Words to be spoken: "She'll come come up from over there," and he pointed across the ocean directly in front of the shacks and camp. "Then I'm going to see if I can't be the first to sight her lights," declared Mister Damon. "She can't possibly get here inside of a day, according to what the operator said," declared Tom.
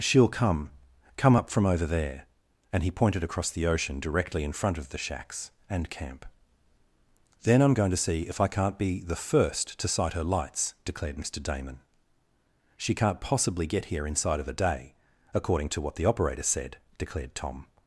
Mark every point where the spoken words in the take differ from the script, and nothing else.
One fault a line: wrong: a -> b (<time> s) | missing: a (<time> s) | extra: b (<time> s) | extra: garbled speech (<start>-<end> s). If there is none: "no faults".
no faults